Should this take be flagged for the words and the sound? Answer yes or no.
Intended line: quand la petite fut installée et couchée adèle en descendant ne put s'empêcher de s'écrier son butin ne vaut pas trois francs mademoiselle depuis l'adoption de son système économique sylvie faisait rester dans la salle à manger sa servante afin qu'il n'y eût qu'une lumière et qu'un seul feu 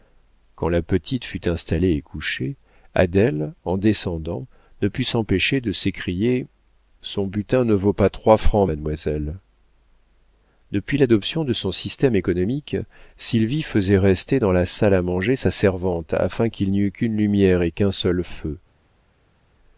no